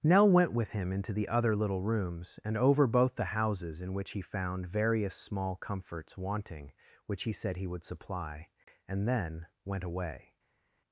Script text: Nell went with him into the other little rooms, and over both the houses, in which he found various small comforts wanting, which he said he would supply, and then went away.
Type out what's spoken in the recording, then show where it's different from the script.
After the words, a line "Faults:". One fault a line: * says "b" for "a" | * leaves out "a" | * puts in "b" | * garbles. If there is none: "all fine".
Nell went with him into the other little rooms, and over both the houses, in which he found various small comforts wanting, which he said he would supply, and then went away.
Faults:
all fine